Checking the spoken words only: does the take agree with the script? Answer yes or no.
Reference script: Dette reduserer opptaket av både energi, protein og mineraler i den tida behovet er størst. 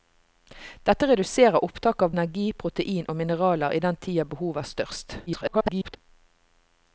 no